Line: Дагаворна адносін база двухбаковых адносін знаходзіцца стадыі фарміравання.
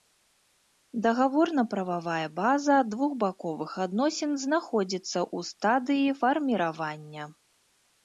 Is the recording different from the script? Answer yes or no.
yes